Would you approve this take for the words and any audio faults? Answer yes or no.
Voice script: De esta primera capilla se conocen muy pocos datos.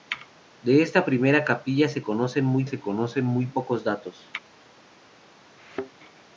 no